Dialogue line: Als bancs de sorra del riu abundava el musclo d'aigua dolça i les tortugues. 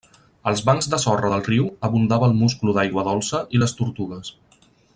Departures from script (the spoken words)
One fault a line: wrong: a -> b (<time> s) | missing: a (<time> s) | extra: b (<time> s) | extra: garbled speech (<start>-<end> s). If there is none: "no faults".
no faults